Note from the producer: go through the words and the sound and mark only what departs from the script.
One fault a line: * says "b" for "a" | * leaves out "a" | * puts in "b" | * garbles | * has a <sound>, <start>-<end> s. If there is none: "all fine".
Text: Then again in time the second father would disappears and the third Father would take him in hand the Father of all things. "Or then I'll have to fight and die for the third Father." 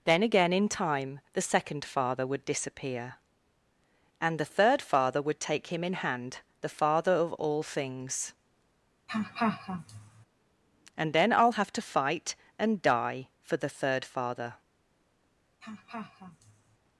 * says "disappear" for "disappears"
* has a laugh, 9.1-10.3 s
* says "And" for "Or"
* has a laugh, 15.6-16.8 s